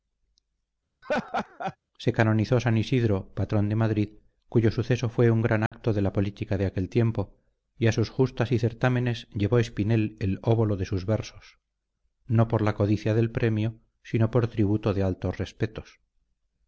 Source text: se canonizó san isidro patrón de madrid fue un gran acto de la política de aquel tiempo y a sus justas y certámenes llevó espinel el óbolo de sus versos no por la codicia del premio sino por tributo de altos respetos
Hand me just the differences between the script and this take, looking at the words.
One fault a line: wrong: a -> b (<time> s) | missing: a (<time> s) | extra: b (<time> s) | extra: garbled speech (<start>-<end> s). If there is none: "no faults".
extra: cuyo suceso (4.5 s)